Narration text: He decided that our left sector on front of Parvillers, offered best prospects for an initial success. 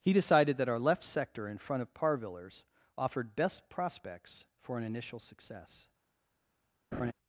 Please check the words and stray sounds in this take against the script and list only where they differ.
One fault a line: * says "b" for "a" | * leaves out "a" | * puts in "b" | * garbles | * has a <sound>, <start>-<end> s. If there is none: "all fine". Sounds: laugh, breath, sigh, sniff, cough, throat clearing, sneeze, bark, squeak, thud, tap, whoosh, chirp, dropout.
* says "in" for "on"
* has a laugh, 6.9-7.1 s